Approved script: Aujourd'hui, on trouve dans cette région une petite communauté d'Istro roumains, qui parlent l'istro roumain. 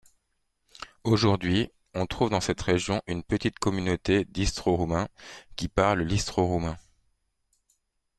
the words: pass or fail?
pass